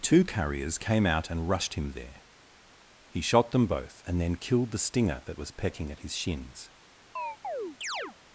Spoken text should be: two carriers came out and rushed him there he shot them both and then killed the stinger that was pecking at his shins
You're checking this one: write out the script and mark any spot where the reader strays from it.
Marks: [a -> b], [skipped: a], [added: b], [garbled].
two carriers came out and rushed him there he shot them both and then killed the stinger that was pecking at his shins